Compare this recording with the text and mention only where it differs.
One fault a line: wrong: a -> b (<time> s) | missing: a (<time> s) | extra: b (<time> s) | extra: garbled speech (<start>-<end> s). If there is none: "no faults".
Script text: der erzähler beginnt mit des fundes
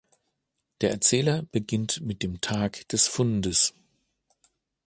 extra: dem tag (2.2 s)